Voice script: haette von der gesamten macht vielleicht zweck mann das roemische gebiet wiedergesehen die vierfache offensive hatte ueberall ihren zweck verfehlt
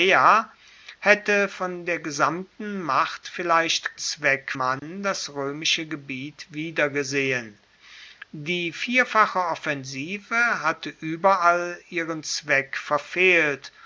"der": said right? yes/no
yes